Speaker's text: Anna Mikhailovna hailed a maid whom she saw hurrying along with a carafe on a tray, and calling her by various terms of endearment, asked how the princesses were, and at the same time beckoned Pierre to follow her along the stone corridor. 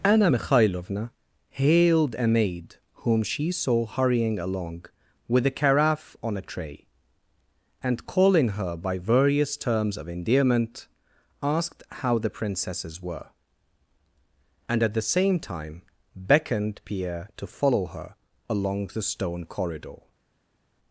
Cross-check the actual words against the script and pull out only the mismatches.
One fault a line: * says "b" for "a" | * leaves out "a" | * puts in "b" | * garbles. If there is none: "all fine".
all fine